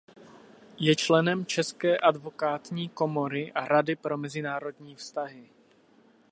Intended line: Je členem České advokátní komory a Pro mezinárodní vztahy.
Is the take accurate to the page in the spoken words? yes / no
no